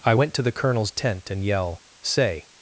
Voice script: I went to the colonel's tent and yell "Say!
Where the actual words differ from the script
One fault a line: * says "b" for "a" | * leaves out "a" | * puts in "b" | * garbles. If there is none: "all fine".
all fine